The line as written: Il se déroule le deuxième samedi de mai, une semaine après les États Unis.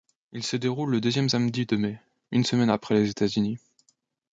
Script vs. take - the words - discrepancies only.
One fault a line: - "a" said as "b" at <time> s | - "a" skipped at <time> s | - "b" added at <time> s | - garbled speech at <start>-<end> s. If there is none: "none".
none